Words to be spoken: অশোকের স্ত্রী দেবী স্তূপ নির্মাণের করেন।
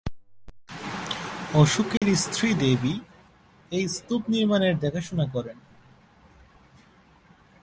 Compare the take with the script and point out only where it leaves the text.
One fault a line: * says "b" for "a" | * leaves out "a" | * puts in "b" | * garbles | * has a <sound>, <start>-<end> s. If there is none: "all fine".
* has a dropout, 2.0-2.0 s
* puts in "এই"
* puts in "দেখাশোনা"